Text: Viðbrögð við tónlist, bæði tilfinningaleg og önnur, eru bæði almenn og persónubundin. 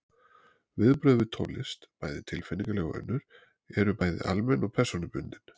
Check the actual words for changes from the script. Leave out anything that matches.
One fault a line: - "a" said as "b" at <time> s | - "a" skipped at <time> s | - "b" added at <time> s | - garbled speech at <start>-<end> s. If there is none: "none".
none